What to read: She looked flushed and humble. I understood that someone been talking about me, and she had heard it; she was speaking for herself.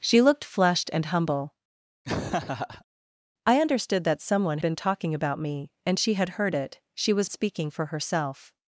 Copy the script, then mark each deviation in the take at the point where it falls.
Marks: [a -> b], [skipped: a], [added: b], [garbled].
She looked flushed and humble. I understood that someone been talking about me, and she had heard it; she was speaking for herself.